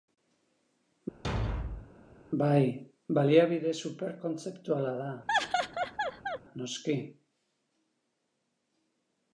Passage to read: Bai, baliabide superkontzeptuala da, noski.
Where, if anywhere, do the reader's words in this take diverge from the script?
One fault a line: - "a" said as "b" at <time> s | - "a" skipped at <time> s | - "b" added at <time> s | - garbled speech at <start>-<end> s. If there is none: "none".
none